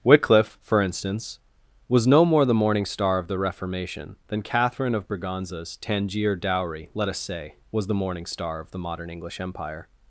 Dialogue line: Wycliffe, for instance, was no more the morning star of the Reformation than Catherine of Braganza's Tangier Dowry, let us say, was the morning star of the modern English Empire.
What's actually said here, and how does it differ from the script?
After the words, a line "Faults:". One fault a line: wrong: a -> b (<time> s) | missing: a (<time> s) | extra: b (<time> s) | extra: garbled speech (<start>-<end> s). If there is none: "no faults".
Wycliffe, for instance, was no more the morning star of the Reformation than Catherine of Braganza's Tangier Dowry, let us say, was the morning star of the modern English Empire.
Faults:
no faults